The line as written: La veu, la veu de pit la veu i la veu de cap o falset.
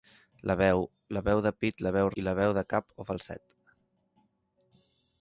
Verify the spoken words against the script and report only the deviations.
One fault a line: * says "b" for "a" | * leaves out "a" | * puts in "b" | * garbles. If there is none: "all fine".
all fine